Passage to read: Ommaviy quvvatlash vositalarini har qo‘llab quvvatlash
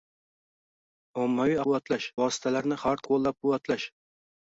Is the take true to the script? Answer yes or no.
yes